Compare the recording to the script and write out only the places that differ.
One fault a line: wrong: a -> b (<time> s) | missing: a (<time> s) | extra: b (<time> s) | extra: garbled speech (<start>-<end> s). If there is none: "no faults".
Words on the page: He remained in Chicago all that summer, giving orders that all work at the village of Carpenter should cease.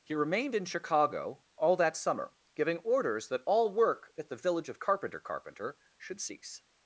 extra: Carpenter (5.2 s)